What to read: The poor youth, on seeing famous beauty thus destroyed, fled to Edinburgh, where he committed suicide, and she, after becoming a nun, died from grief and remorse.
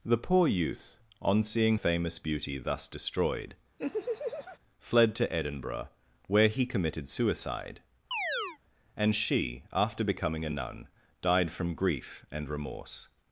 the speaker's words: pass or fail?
pass